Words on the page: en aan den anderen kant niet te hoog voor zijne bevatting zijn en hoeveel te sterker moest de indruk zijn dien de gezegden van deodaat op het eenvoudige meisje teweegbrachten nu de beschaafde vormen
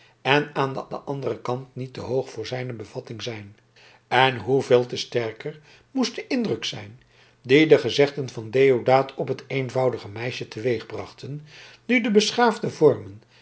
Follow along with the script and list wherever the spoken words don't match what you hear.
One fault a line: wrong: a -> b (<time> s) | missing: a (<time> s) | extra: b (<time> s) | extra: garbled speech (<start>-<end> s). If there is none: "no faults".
extra: den (0.9 s)